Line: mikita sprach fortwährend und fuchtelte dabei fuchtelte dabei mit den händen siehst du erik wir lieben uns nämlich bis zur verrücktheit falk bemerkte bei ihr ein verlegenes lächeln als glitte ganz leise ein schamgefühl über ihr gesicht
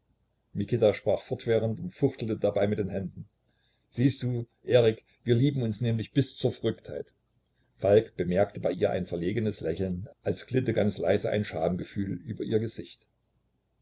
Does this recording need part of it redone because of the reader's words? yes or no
yes